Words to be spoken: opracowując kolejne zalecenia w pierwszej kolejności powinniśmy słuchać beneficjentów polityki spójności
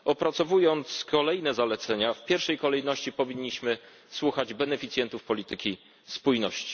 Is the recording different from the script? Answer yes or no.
no